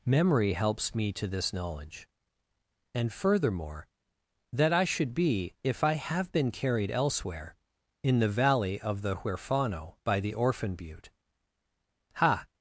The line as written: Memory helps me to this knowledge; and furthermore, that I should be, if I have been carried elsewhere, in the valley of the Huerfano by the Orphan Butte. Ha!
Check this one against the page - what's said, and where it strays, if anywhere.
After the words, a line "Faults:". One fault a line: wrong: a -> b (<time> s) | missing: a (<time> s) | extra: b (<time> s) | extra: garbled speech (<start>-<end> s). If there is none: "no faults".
Memory helps me to this knowledge; and furthermore, that I should be, if I have been carried elsewhere, in the valley of the Huerfano by the Orphan Butte. Ha!
Faults:
no faults